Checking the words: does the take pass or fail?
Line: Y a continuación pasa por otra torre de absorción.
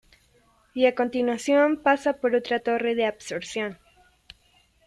pass